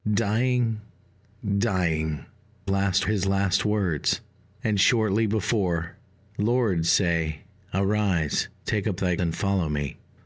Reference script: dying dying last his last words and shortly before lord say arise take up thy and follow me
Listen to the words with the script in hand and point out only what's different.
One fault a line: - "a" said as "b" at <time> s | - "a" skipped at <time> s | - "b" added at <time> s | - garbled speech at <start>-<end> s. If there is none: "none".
none